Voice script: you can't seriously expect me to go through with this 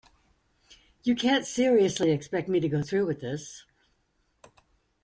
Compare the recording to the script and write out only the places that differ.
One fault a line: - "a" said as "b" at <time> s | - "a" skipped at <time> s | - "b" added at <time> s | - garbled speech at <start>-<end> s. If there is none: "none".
none